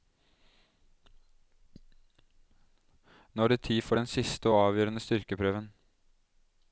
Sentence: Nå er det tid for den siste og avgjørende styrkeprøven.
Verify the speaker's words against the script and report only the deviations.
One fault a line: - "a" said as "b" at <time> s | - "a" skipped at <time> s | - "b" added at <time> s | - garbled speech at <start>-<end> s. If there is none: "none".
none